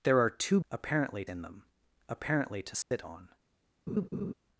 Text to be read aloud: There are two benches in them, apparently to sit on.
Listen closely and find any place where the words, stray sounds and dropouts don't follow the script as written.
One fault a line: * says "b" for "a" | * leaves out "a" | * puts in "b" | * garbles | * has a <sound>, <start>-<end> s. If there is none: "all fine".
* says "apparently" for "benches"
* has a dropout, 2.8-2.9 s
* has a laugh, 3.9-4.3 s